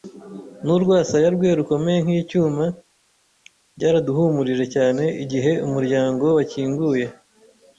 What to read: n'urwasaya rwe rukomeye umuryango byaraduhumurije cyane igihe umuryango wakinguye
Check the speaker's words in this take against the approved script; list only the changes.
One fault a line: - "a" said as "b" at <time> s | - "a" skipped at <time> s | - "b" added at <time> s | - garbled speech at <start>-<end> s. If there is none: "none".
- "umuryango" said as "nk'icyuma" at 2.0 s